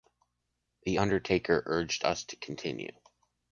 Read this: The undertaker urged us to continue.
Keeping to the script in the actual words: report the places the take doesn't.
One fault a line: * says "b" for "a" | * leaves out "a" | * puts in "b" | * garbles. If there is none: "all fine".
all fine